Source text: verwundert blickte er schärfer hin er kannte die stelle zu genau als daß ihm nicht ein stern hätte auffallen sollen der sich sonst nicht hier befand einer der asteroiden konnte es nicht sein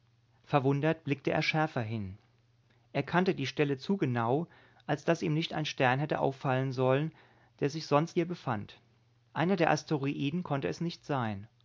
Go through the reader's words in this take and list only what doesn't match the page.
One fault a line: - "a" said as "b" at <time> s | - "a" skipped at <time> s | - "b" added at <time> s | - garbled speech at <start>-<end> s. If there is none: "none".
- "nicht" skipped at 8.2 s